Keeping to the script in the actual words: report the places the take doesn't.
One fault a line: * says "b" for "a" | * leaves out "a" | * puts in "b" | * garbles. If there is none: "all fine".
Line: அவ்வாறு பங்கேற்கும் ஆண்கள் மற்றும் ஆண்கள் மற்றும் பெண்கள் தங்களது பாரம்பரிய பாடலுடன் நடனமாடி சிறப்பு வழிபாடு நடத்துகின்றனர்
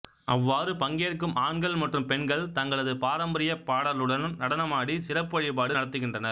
* leaves out "ஆண்கள் மற்றும்"